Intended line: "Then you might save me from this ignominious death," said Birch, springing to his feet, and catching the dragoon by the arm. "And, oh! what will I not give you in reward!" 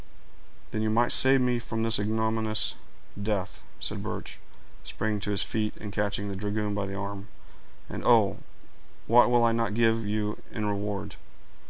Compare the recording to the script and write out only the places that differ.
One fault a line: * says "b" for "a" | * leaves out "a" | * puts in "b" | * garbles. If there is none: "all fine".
all fine